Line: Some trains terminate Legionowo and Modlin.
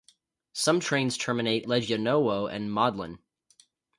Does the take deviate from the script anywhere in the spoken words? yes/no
no